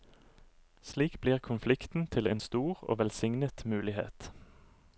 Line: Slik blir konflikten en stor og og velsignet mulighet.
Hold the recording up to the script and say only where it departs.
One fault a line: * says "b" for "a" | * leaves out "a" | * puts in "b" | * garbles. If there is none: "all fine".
* puts in "til"
* leaves out "og"